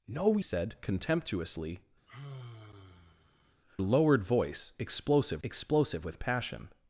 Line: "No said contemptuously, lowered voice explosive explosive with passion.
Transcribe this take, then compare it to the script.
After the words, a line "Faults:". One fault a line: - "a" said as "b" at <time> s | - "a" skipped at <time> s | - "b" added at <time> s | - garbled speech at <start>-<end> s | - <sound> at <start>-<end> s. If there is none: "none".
"No said contemptuously, lowered voice explosive explosive with passion.
Faults:
- sigh at 2.1-3.6 s